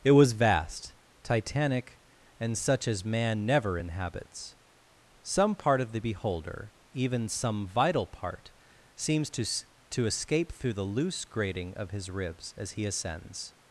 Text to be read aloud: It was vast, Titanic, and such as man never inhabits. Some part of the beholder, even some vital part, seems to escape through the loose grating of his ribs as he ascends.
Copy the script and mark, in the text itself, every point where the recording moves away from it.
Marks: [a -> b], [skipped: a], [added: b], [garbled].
It was vast, Titanic, and such as man never inhabits. Some part of the beholder, even some vital part, seems to [added: to] escape through the loose grating of his ribs as he ascends.